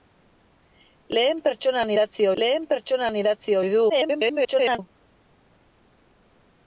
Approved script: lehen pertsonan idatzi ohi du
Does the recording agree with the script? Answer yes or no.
no